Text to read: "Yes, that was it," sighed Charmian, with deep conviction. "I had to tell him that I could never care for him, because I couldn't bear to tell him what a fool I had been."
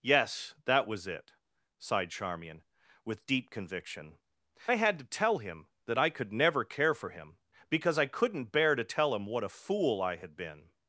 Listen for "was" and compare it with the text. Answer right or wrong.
right